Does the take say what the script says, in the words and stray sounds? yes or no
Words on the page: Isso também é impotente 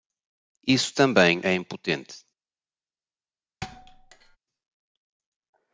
no